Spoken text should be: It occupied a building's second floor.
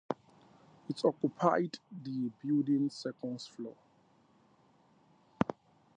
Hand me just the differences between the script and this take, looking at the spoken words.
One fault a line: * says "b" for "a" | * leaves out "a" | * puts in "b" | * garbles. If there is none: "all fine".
* says "the" for "a"